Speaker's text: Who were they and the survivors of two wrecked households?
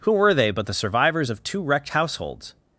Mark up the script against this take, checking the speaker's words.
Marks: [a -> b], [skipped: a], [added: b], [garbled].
Who were they [and -> but] the survivors of two wrecked households?